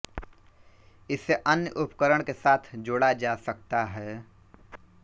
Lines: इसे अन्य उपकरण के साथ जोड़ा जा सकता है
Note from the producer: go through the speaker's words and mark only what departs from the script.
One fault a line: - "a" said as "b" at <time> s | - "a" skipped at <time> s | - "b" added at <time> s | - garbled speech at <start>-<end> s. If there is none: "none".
none